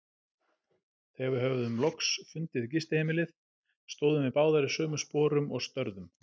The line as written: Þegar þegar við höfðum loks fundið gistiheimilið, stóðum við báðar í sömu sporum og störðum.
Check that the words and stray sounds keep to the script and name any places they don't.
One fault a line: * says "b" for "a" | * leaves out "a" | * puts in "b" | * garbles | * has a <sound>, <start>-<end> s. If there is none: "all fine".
* leaves out "þegar"